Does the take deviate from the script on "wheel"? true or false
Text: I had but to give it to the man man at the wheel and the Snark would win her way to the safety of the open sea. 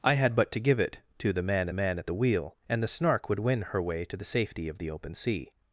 false